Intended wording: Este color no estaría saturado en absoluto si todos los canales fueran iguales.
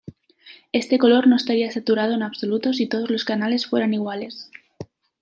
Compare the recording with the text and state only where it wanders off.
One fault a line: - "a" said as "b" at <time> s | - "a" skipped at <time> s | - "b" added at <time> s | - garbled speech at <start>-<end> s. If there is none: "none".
none